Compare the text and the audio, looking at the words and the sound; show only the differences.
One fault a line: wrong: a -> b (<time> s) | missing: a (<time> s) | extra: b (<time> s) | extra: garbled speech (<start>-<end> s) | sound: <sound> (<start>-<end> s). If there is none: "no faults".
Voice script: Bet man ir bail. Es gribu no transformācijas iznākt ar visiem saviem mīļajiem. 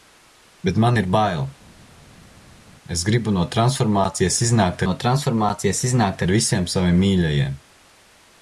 extra: no transformācijas iznākt (4.9 s)